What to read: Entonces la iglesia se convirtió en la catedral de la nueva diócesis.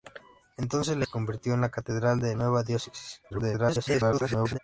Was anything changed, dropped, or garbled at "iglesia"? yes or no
yes